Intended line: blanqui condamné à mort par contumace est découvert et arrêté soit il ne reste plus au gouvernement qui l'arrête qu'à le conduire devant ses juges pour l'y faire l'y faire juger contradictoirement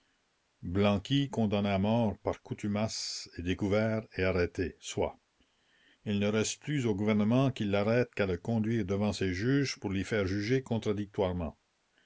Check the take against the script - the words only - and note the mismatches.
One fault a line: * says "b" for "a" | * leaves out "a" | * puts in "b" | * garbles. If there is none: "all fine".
* leaves out "l'y faire"